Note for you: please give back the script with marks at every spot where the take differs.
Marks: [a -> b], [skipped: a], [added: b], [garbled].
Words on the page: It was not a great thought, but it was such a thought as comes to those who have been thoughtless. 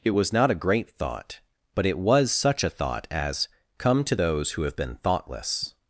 It was not a great thought, but it was such a thought as [comes -> come] to those who have been thoughtless.